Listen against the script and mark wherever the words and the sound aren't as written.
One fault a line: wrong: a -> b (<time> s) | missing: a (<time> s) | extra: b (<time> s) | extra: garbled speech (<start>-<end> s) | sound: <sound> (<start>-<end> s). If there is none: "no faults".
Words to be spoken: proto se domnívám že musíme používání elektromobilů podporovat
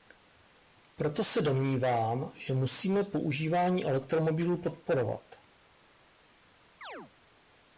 sound: chirp (6.8-7.1 s)